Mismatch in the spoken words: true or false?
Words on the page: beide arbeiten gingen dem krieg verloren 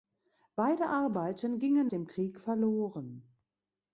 false